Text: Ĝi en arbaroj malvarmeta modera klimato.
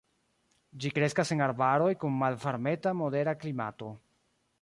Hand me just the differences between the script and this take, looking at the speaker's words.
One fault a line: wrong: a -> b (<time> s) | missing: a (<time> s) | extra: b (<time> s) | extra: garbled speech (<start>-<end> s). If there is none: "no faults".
extra: kreskas (1.0 s)
extra: kun (2.0 s)